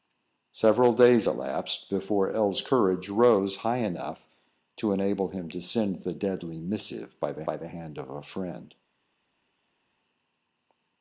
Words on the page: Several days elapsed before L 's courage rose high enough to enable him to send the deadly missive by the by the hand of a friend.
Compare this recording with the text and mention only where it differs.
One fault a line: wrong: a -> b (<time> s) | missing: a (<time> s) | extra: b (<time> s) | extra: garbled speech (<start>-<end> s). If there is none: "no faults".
no faults